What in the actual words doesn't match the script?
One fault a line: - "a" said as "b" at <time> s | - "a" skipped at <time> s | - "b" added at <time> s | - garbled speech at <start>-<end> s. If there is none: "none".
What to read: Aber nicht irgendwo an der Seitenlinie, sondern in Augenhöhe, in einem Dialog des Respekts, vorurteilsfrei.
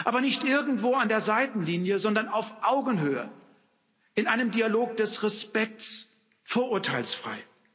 - "in" said as "auf" at 2.3 s